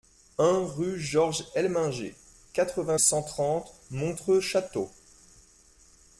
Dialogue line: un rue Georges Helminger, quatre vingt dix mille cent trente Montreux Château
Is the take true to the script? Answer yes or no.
no